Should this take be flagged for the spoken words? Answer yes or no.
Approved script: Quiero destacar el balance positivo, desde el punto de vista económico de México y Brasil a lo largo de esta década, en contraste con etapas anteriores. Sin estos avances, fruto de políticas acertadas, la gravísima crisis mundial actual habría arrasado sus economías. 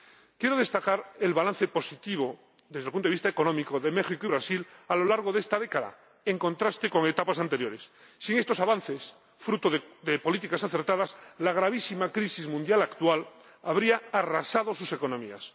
no